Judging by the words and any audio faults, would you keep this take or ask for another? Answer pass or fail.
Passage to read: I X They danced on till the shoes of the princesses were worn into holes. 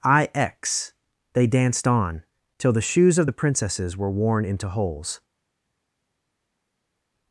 pass